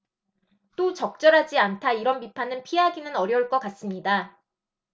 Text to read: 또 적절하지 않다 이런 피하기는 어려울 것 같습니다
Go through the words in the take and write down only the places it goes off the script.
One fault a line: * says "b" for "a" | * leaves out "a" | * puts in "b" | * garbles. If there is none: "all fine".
* puts in "비판은"